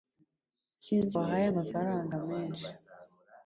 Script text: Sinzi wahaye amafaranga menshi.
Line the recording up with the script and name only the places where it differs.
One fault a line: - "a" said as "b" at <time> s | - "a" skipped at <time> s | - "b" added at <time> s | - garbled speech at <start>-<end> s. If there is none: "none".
none